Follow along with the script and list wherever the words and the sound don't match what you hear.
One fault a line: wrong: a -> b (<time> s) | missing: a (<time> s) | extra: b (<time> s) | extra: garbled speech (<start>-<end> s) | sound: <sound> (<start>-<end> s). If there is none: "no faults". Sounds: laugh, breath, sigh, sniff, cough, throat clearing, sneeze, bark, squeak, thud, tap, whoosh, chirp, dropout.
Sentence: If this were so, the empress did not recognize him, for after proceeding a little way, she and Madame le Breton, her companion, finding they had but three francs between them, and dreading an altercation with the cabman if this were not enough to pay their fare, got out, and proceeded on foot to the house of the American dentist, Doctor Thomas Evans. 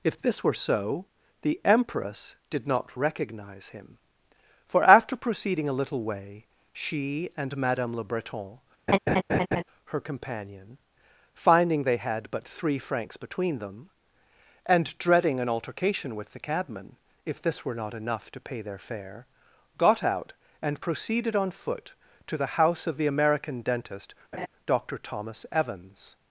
sound: laugh (8.9-9.6 s)
sound: laugh (24.3-24.5 s)